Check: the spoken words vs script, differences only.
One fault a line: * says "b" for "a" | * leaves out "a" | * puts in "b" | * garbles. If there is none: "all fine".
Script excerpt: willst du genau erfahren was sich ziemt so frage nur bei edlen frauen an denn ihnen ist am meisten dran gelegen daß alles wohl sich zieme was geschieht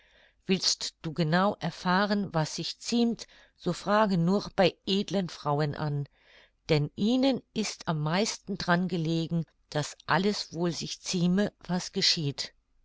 all fine